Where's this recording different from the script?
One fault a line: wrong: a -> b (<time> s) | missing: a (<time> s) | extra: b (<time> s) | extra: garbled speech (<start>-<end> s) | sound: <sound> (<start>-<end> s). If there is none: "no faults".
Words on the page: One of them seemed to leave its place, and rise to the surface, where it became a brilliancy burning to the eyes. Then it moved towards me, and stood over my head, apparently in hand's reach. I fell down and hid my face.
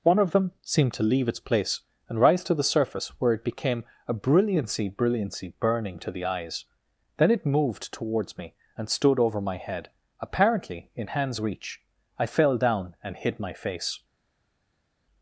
extra: brilliancy (4.9 s)